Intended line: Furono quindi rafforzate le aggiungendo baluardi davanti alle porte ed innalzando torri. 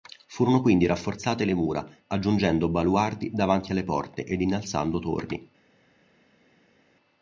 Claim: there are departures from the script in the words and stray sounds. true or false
true